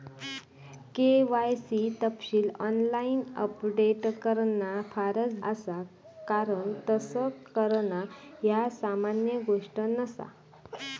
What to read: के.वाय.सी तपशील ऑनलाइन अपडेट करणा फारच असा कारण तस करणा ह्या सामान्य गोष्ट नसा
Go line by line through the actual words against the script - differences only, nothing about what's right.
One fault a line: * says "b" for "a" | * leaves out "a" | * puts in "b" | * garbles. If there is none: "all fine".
all fine